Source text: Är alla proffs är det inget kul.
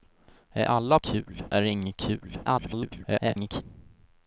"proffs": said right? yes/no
no